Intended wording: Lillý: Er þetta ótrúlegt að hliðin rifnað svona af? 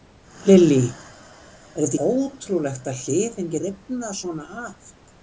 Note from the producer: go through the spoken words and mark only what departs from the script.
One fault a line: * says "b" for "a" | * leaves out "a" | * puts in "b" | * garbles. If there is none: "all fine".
all fine